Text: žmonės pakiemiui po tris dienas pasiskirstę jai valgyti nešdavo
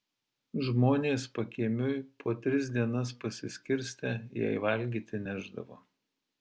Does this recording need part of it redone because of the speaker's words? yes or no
no